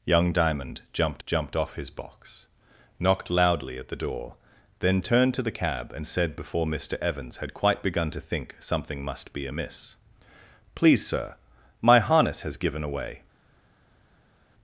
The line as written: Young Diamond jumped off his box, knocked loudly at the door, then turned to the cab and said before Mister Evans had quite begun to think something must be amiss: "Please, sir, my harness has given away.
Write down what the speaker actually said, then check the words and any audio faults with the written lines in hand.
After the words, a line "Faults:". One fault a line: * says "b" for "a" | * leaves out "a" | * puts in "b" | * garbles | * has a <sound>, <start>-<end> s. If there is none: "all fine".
Young Diamond jumped jumped off his box, knocked loudly at the door, then turned to the cab and said before Mister Evans had quite begun to think something must be amiss: "Please, sir, my harness has given away.
Faults:
* puts in "jumped"